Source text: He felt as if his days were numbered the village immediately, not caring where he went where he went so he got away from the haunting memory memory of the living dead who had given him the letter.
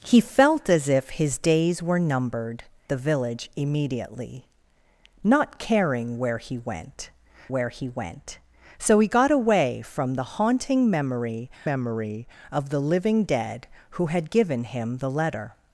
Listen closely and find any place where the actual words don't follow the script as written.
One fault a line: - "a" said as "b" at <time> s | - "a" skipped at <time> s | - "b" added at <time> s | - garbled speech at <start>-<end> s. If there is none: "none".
none